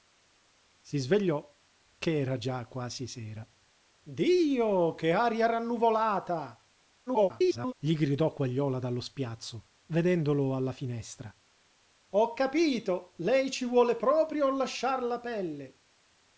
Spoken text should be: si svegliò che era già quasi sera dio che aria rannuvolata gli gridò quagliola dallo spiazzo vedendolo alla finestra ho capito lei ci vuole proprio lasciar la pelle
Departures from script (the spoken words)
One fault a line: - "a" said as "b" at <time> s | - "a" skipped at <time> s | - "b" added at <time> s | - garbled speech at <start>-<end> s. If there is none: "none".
- garbled speech at 7.1-7.7 s